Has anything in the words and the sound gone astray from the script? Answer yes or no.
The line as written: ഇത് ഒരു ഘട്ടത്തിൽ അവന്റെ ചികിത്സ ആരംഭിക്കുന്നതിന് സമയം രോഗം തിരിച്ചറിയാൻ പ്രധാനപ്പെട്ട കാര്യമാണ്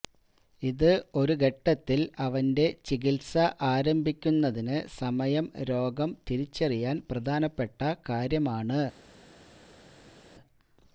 no